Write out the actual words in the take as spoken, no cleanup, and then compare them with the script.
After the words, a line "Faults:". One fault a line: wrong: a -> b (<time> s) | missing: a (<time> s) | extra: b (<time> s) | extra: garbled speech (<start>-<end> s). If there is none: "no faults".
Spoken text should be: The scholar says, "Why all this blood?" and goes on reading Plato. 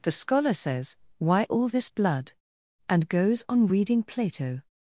The scholar says, "Why all this blood?" and goes on reading Plato.
Faults:
no faults